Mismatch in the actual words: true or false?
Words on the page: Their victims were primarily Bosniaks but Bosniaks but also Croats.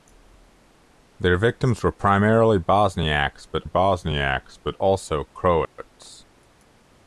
false